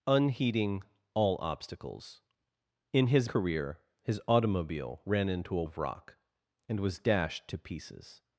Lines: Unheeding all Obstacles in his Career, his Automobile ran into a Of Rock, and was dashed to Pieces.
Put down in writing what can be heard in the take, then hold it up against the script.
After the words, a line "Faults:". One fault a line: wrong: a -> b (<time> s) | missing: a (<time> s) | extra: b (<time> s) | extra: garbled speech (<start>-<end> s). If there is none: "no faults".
Unheeding all Obstacles in his Career, his Automobile ran into a Of Rock, and was dashed to Pieces.
Faults:
no faults